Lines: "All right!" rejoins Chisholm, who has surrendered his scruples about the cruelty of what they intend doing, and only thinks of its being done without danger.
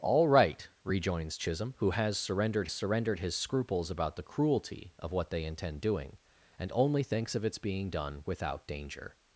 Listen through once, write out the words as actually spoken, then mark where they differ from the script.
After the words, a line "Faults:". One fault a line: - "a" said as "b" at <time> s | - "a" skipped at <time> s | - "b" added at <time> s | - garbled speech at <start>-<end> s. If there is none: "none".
"All right!" rejoins Chisholm, who has surrendered surrendered his scruples about the cruelty of what they intend doing, and only thinks of its being done without danger.
Faults:
- "surrendered" added at 2.7 s